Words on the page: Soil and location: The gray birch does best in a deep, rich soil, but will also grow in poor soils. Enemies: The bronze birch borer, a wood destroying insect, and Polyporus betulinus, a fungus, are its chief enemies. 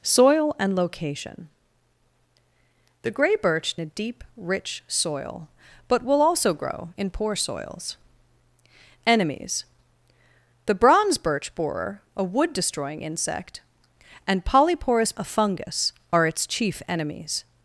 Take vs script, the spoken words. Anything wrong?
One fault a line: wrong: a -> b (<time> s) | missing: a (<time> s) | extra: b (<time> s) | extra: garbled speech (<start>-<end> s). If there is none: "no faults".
missing: does best in (3.8 s)
missing: betulinus (15.1 s)